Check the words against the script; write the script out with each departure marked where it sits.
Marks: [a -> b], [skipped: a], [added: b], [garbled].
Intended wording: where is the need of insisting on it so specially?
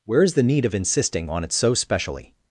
where is the need of insisting on it so specially?